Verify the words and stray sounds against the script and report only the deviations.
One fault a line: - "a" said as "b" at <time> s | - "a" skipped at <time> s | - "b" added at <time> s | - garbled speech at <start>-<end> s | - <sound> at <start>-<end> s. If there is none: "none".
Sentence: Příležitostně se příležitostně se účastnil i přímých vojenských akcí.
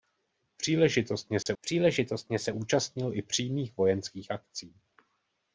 - dropout at 1.4-1.5 s